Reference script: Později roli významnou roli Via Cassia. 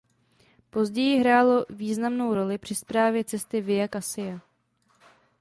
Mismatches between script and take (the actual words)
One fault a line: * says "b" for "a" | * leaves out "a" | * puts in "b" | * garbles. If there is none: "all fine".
* says "hrálo" for "roli"
* puts in "při správě cesty"